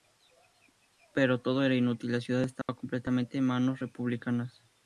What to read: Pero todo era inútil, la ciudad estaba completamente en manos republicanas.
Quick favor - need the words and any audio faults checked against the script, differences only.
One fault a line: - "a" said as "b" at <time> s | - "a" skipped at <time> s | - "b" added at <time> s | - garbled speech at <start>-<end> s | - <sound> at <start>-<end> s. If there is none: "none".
- dropout at 2.6-2.7 s